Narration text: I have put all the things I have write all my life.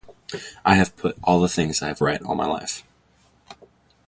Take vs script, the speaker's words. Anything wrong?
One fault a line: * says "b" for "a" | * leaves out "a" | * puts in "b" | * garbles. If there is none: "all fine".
all fine